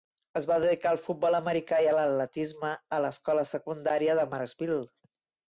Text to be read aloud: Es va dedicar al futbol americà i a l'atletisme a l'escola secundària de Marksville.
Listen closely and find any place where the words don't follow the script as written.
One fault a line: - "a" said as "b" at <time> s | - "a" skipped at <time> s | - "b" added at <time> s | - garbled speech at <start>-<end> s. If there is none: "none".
none